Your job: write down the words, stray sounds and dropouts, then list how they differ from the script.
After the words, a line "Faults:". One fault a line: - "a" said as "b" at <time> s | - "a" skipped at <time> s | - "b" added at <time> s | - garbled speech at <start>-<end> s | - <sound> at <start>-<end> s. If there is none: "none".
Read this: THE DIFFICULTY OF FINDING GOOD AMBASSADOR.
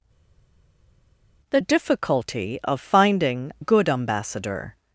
THE DIFFICULTY OF FINDING GOOD AMBASSADOR.
Faults:
none